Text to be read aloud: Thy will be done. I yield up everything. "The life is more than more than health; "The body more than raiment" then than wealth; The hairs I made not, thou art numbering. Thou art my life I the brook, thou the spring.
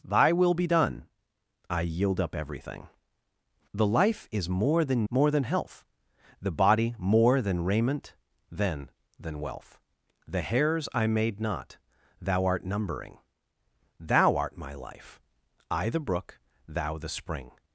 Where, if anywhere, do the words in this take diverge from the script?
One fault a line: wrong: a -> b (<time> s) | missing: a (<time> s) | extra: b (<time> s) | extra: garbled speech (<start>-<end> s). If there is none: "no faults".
no faults